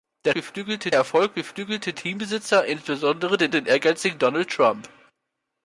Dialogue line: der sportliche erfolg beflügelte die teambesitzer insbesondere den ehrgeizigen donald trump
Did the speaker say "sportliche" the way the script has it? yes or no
no